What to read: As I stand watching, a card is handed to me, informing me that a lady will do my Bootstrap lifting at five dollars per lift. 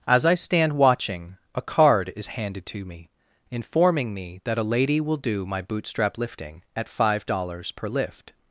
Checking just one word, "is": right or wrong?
right